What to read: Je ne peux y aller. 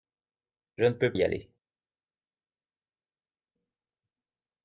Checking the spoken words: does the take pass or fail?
pass